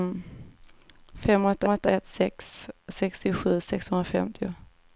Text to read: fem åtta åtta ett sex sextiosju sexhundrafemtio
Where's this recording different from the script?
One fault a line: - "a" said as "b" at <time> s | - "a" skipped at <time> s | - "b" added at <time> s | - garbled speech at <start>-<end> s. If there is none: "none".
none